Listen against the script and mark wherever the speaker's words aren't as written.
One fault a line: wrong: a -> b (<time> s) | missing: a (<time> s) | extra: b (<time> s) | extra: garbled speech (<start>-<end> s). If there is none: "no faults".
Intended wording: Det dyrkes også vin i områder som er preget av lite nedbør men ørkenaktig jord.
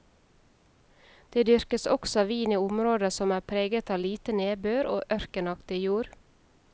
wrong: men -> og (5.0 s)